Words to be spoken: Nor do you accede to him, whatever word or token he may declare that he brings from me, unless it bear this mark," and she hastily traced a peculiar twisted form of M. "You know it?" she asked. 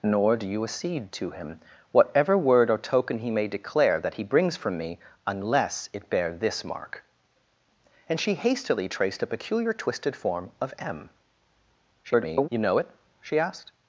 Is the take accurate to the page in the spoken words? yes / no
no